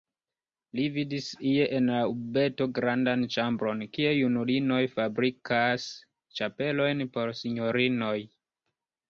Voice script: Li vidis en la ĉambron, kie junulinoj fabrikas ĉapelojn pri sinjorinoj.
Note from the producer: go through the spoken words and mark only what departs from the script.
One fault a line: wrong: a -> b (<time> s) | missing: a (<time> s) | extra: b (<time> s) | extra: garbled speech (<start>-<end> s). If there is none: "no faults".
extra: ie (1.5 s)
extra: urbeto grandan (2.1 s)
wrong: pri -> por (7.2 s)